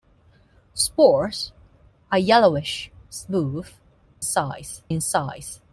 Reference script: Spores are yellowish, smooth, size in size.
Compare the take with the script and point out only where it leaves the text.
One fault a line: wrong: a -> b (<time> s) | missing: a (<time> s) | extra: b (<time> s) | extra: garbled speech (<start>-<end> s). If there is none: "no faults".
no faults